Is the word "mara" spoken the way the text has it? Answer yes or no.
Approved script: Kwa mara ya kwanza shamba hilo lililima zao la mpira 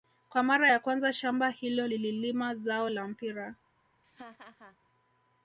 yes